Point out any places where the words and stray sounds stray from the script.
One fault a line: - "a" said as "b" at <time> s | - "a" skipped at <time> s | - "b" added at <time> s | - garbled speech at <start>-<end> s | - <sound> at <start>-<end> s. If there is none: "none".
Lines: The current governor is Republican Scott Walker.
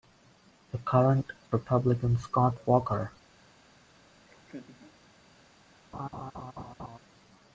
- "governor is" skipped at 1.3 s
- laugh at 4.3-5.0 s
- laugh at 5.9-7.0 s